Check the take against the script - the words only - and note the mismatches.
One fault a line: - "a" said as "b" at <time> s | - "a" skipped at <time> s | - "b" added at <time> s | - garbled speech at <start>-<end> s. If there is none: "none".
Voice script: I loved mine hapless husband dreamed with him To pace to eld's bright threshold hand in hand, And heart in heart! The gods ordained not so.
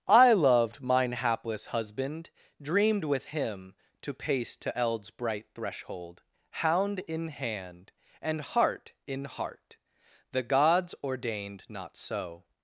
- "hand" said as "hound" at 6.5 s